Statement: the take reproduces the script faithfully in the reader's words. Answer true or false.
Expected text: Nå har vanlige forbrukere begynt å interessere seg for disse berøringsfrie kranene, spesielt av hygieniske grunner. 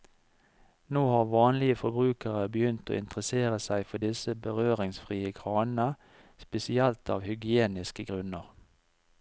true